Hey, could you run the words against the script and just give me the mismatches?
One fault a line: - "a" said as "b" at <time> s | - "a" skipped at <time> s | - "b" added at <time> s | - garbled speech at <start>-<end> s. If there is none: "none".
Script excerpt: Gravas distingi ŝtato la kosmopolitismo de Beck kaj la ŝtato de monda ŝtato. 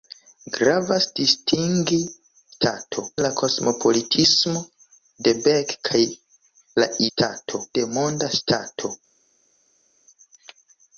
none